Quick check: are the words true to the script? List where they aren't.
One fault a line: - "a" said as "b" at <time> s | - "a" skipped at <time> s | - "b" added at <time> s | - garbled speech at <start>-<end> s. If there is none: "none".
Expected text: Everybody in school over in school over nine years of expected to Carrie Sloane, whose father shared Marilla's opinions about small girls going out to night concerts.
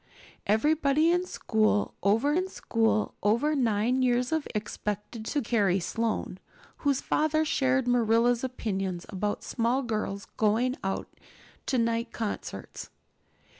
none